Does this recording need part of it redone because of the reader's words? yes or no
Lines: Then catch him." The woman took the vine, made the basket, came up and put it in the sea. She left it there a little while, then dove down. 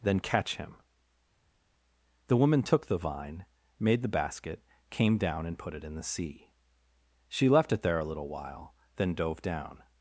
yes